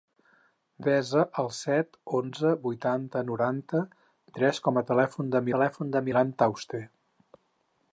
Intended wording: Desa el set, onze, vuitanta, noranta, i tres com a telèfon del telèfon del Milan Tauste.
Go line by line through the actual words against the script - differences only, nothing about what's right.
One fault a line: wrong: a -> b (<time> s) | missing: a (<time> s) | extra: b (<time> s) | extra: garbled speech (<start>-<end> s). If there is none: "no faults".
no faults